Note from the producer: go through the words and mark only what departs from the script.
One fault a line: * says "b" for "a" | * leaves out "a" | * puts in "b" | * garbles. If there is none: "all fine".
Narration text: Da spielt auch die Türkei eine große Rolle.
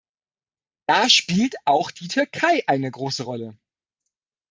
all fine